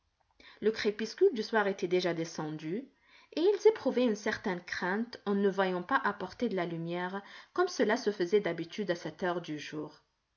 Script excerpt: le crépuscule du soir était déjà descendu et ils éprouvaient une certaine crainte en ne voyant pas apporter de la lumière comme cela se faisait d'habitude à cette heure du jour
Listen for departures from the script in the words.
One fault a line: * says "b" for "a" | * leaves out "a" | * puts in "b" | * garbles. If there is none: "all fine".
all fine